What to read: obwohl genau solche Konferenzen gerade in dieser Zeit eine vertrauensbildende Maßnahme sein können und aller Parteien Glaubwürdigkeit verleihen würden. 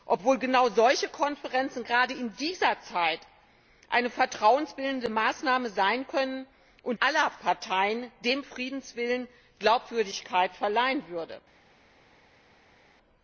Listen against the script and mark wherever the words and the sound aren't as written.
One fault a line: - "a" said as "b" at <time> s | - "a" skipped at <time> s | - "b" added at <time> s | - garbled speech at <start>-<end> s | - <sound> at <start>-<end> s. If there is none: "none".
none